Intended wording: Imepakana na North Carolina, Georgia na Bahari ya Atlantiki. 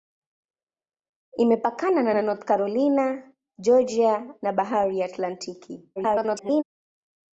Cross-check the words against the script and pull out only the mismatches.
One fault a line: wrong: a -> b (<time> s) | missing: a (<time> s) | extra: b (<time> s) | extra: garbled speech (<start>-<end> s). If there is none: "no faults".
extra: na (2.1 s)
extra: garbled speech (6.0-6.6 s)